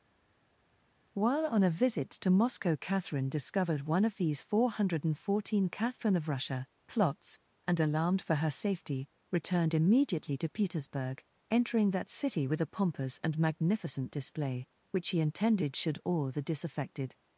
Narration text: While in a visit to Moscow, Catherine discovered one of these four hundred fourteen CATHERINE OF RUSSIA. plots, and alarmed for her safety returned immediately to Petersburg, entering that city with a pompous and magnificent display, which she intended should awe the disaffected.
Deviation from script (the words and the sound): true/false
true